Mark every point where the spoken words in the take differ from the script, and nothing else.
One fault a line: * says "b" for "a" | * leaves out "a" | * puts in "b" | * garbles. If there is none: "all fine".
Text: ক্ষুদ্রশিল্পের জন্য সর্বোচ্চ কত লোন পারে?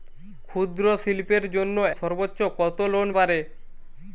all fine